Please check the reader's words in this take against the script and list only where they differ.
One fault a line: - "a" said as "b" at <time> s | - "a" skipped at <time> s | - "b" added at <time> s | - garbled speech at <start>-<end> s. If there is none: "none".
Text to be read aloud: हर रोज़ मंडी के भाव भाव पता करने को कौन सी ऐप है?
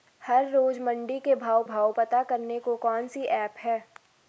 none